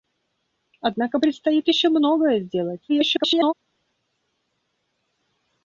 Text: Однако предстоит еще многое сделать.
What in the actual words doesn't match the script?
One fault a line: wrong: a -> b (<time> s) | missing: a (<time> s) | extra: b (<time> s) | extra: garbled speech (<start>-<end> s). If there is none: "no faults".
extra: garbled speech (2.9-3.5 s)